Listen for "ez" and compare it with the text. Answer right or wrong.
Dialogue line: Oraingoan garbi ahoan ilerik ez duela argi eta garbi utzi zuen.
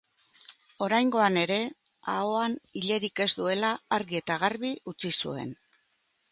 right